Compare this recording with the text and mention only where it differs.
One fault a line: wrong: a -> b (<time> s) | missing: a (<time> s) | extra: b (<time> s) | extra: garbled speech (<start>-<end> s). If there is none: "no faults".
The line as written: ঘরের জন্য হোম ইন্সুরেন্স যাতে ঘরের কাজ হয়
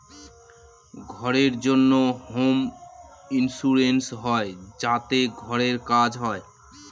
extra: হয় (4.2 s)